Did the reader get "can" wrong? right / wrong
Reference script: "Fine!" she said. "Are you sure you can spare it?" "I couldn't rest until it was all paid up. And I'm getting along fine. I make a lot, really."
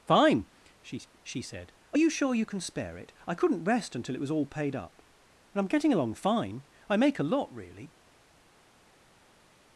right